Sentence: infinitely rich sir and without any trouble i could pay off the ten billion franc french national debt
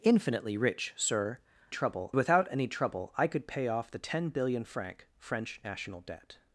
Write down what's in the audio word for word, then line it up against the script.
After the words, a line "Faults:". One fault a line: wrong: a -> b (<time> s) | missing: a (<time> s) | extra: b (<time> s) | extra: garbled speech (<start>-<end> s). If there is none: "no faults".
infinitely rich sir trouble without any trouble i could pay off the ten billion franc french national debt
Faults:
wrong: and -> trouble (1.7 s)